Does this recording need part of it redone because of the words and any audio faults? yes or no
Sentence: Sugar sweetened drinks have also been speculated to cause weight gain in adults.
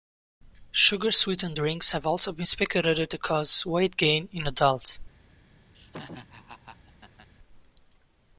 yes